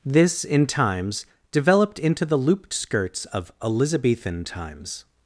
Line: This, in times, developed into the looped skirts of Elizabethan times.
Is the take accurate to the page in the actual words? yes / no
yes